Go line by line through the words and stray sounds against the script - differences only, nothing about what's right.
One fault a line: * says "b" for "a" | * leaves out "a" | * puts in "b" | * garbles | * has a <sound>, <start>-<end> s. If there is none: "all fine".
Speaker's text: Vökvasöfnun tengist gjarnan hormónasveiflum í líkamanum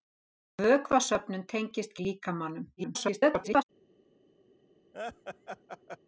* leaves out "gjarnan hormónasveiflum"
* garbles
* has a laugh, 4.9-6.0 s